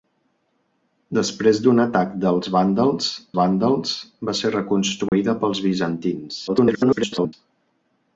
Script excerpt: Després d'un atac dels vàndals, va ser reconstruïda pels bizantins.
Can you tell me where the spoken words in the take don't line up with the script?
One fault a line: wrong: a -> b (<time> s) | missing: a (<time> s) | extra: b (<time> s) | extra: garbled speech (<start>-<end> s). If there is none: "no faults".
extra: vàndals (3.4 s)
extra: garbled speech (6.5-7.3 s)